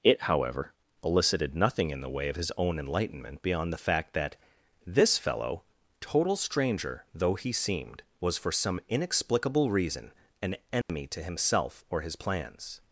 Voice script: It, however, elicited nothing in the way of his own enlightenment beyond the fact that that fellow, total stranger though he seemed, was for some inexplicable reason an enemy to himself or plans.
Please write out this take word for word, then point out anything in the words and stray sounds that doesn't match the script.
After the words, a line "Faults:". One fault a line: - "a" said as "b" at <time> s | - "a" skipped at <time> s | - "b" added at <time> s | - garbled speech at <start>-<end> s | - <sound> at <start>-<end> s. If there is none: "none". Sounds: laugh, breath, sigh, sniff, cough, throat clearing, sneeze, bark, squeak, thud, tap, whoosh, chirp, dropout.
It, however, elicited nothing in the way of his own enlightenment beyond the fact that this fellow, total stranger though he seemed, was for some inexplicable reason an enemy to himself or his plans.
Faults:
- "that" said as "this" at 4.8 s
- dropout at 10.8-10.9 s
- "his" added at 12.0 s